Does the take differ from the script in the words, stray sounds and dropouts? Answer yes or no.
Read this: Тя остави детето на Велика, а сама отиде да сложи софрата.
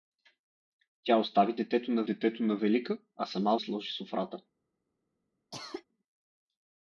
yes